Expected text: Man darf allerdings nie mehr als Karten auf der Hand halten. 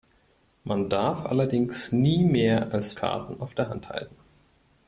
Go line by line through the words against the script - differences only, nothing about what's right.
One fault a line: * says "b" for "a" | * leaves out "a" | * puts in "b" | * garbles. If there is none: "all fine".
all fine